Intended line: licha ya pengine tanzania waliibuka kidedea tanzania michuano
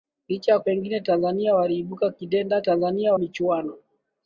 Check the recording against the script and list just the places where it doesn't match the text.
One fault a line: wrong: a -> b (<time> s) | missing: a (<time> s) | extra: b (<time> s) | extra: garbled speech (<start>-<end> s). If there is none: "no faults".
no faults